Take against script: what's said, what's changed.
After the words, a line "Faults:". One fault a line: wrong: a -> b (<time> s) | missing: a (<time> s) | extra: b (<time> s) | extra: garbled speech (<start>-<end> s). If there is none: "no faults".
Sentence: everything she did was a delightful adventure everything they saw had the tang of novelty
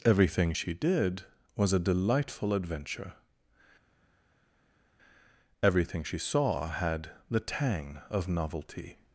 everything she did was a delightful adventure everything she saw had the tang of novelty
Faults:
wrong: they -> she (6.0 s)